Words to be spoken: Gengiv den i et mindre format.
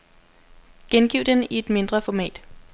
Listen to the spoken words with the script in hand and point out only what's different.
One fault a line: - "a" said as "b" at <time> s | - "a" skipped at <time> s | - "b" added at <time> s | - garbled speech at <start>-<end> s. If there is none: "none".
none